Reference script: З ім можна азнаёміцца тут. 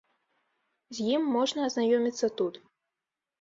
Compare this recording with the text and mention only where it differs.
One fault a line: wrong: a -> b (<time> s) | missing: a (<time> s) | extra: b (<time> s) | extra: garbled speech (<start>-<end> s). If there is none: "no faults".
no faults